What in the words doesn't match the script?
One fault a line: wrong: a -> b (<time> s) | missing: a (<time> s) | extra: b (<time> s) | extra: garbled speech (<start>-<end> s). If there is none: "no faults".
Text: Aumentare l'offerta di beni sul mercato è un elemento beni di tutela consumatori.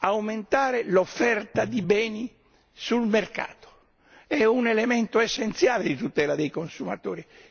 wrong: beni -> essenziale (5.2 s)
extra: dei (6.3 s)